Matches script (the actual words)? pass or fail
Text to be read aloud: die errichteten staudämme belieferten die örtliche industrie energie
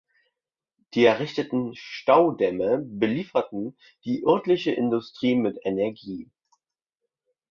fail